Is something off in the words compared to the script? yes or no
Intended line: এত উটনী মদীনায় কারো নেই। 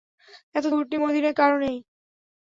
no